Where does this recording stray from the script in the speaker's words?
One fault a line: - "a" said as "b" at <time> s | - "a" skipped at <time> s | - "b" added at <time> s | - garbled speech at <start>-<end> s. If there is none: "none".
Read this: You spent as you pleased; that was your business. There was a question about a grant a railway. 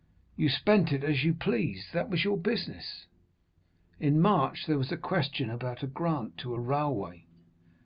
- "it" added at 0.9 s
- "In March" added at 4.0 s
- "to" added at 6.4 s